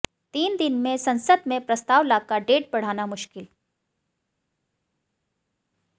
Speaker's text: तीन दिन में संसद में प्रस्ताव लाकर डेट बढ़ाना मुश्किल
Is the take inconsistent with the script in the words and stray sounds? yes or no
no